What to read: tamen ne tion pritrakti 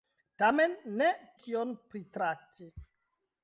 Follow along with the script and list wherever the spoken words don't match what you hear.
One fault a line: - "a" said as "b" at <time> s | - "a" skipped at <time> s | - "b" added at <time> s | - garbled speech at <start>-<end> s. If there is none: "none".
none